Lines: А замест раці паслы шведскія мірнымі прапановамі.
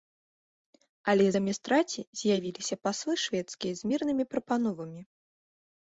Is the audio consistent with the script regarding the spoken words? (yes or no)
no